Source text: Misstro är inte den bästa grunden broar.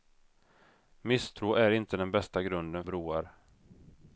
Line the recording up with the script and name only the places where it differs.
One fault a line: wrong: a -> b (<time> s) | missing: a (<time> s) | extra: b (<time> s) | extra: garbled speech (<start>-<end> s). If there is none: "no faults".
no faults